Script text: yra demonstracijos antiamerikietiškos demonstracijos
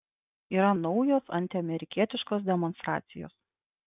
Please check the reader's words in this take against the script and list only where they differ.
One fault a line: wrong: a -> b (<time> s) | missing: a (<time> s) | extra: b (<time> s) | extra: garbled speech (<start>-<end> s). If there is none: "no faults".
wrong: demonstracijos -> naujos (0.8 s)